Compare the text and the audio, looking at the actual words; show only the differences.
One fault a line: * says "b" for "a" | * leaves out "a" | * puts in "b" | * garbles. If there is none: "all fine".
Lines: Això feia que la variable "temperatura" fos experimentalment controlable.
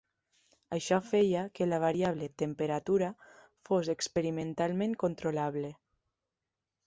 all fine